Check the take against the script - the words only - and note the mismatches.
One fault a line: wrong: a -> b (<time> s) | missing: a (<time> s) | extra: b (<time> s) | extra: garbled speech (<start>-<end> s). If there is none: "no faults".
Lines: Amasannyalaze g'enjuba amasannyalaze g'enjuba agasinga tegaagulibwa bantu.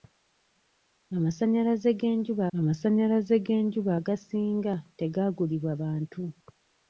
no faults